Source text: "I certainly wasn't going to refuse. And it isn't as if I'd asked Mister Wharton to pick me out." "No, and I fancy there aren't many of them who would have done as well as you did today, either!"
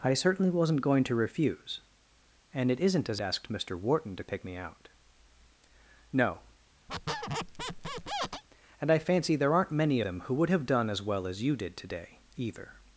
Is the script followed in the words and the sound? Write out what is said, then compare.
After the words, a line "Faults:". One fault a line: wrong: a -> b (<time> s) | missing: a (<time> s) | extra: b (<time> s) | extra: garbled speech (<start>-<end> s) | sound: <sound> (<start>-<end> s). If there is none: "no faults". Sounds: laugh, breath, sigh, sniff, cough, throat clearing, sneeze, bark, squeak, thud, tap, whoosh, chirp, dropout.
"I certainly wasn't going to refuse. And it isn't as asked Mister Wharton to pick me out." "No, and I fancy there aren't many them who would have done as well as you did today, either!"
Faults:
missing: if I'd (3.2 s)
sound: squeak (6.9-8.4 s)
missing: of (10.0 s)